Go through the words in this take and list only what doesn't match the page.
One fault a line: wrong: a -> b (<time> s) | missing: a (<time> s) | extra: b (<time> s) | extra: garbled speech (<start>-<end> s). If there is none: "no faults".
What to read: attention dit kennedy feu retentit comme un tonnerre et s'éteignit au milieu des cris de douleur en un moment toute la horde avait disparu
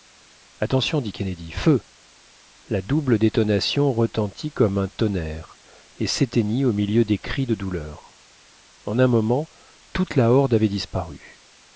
extra: la double détonation (2.7 s)